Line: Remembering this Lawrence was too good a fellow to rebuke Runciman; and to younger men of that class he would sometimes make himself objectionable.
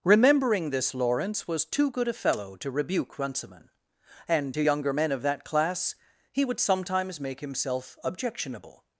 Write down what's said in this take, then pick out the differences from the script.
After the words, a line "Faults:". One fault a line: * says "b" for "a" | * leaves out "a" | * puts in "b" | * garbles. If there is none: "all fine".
Remembering this Lawrence was too good a fellow to rebuke Runciman; and to younger men of that class he would sometimes make himself objectionable.
Faults:
all fine